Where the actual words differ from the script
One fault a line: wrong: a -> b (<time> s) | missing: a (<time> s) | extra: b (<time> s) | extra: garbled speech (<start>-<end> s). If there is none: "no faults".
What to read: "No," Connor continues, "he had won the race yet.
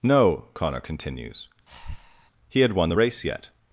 no faults